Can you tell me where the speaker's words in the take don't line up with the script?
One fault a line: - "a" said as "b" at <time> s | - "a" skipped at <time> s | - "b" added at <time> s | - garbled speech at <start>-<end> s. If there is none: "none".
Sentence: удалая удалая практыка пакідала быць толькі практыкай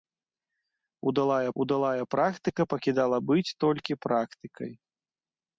none